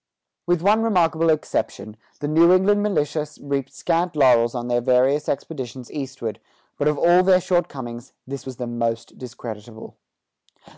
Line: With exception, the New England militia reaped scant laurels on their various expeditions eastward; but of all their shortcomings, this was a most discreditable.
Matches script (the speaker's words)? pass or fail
fail